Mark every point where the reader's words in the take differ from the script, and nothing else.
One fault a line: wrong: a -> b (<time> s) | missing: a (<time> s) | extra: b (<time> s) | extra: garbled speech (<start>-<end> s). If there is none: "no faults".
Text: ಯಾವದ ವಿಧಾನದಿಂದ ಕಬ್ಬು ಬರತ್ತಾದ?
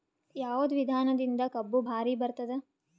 extra: ಭಾರಿ (1.8 s)